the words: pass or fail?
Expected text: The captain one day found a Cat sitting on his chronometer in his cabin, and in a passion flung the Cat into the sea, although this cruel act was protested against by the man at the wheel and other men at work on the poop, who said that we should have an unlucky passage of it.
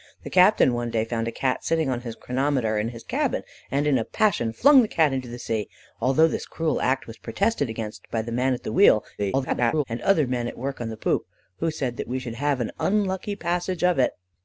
fail